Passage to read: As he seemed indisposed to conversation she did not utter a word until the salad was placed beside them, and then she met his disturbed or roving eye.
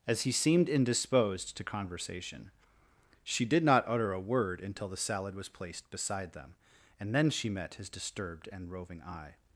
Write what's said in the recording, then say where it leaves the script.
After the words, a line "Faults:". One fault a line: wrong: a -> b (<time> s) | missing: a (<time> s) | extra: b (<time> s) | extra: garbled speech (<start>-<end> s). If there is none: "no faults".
As he seemed indisposed to conversation she did not utter a word until the salad was placed beside them, and then she met his disturbed and roving eye.
Faults:
wrong: or -> and (8.5 s)